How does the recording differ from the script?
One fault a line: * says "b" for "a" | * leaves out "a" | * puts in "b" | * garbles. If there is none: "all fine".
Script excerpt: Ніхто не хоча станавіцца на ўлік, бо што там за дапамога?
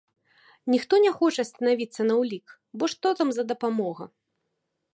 all fine